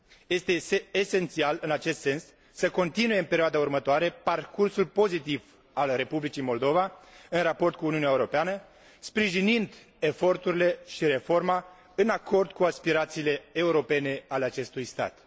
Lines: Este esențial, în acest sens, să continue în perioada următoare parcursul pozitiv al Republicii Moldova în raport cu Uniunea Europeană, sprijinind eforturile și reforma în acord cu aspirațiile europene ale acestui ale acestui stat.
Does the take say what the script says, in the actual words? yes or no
no